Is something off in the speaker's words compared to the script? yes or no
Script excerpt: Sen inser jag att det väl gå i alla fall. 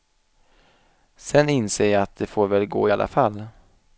yes